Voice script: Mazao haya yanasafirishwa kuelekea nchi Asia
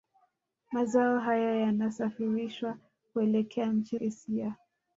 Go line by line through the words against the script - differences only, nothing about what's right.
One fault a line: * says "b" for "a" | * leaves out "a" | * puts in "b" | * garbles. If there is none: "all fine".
all fine